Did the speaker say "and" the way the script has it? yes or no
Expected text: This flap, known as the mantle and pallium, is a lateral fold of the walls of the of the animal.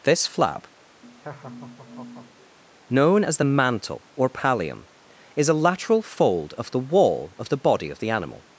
no